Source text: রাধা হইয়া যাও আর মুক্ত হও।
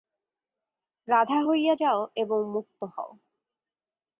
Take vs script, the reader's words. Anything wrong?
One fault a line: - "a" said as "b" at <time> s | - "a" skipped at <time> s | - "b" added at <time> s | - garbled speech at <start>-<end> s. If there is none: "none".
- "আর" said as "এবং" at 2.2 s